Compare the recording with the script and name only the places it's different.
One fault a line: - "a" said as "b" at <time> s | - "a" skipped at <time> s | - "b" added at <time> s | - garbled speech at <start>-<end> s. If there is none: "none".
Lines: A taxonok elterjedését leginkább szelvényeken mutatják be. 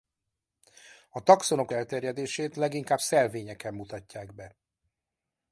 none